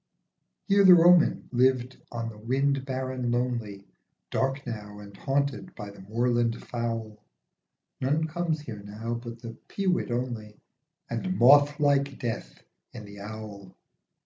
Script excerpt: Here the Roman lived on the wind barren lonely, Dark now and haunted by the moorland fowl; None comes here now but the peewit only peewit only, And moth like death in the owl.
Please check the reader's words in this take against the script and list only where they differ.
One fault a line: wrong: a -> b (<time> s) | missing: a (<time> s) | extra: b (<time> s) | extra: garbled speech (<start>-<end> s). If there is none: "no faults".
missing: peewit only (10.6 s)